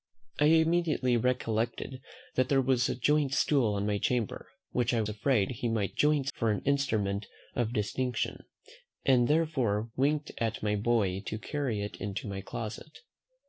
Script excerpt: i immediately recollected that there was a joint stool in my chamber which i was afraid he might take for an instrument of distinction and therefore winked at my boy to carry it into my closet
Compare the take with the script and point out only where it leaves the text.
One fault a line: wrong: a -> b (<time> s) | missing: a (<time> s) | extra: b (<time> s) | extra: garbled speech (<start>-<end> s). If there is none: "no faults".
missing: was (5.0 s)
wrong: take -> joint (5.9 s)